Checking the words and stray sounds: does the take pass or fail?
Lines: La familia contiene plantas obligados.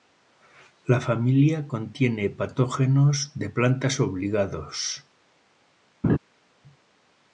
fail